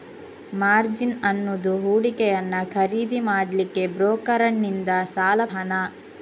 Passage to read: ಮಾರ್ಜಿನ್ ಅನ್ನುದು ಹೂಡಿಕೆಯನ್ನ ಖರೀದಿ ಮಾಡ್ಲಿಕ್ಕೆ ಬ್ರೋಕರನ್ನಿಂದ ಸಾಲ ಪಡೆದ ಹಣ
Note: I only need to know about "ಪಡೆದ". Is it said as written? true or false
false